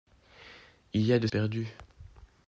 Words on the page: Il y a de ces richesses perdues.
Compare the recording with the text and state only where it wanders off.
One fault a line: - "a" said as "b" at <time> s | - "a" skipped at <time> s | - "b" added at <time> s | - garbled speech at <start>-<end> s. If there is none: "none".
- "ces richesses" skipped at 1.3 s